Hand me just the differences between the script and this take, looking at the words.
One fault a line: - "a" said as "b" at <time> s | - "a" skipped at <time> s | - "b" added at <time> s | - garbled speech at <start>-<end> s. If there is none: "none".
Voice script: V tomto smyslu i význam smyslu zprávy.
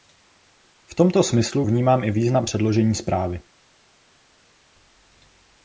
- "vnímám" added at 1.6 s
- "smyslu" said as "předložení" at 2.4 s